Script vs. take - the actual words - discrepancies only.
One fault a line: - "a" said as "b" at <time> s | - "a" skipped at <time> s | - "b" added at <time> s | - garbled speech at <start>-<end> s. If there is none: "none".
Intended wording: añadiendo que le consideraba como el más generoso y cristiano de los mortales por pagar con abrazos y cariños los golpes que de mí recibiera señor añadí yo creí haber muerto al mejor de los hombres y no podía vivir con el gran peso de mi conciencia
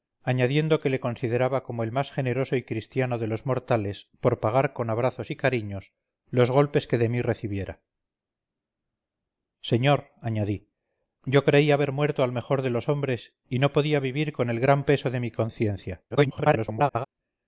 - garbled speech at 16.1-17.1 s